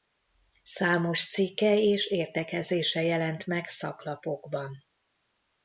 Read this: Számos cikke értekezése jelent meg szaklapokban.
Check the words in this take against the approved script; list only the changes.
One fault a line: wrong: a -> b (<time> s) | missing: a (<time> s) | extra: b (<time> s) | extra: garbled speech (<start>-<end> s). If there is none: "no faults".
extra: és (1.8 s)